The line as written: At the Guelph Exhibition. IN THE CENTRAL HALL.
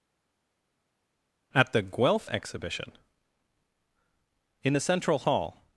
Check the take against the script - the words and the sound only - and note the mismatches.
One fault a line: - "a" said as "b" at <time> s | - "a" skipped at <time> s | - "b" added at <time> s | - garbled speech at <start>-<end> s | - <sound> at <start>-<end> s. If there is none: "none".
none